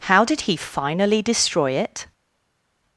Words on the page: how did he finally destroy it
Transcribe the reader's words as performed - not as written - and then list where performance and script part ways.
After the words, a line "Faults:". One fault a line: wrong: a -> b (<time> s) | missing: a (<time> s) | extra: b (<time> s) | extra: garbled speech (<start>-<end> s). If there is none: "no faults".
how did he finally destroy it
Faults:
no faults